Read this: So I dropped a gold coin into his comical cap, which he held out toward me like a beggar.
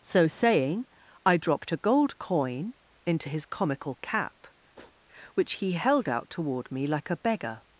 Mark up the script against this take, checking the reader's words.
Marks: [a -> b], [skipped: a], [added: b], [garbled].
So [added: saying] I dropped a gold coin into his comical cap, which he held out toward me like a beggar.